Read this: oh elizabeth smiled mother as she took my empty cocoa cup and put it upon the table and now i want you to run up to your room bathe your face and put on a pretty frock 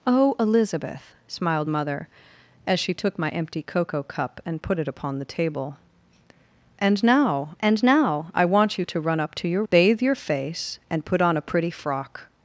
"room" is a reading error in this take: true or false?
true